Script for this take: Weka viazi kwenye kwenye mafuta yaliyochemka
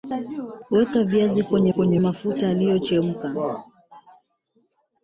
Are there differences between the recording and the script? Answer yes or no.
no